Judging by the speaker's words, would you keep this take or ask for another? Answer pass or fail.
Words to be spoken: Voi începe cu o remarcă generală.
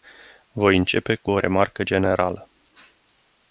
pass